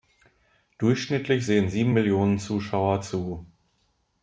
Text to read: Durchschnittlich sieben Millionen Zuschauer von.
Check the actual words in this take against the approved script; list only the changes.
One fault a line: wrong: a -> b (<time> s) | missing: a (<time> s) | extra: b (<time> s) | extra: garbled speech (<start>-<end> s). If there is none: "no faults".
extra: sehen (1.4 s)
wrong: von -> zu (3.0 s)